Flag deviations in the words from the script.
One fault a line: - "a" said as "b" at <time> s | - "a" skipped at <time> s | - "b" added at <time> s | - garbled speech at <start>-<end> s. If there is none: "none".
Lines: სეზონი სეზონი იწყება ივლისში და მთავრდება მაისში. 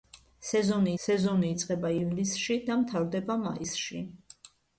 none